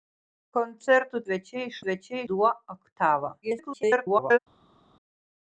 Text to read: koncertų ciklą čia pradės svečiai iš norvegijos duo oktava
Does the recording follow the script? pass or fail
fail